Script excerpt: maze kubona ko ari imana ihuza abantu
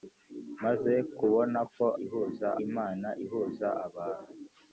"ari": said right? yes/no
no